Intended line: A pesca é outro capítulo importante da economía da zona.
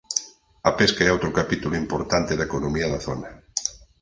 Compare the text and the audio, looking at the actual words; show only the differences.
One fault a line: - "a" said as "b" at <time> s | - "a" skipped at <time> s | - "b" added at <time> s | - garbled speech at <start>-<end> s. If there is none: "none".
none